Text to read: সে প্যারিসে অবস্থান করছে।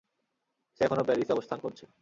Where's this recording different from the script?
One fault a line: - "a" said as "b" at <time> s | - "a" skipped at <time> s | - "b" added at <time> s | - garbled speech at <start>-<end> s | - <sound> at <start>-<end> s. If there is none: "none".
- "এখনো" added at 0.8 s